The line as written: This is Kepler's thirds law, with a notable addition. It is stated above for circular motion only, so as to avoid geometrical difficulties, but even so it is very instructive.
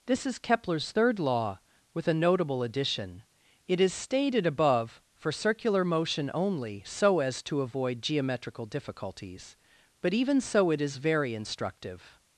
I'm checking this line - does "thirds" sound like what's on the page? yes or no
no